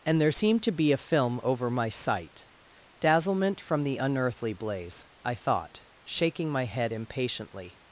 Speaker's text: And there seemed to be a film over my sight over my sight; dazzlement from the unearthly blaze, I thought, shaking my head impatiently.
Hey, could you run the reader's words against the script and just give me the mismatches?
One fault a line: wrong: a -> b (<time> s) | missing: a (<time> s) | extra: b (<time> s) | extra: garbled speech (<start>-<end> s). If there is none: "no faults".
missing: over my sight (2.5 s)